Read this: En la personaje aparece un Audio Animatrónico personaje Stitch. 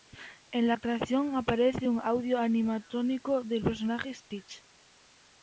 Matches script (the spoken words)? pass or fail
fail